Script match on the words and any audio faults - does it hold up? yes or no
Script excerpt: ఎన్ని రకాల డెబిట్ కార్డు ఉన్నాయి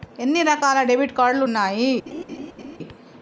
no